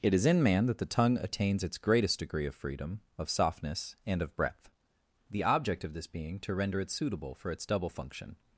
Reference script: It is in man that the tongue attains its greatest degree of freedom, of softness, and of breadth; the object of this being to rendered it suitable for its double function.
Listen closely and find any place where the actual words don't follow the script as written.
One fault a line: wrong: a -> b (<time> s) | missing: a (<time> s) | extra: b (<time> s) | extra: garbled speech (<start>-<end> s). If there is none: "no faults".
wrong: rendered -> render (6.5 s)